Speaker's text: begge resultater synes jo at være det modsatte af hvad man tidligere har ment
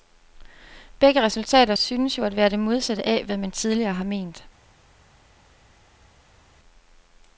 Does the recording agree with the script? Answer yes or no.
yes